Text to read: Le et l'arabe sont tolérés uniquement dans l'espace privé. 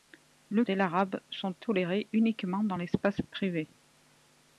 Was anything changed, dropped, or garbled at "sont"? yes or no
no